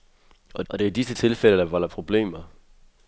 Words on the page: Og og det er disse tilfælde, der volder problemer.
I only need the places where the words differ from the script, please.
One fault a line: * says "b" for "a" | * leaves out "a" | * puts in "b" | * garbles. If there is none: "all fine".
all fine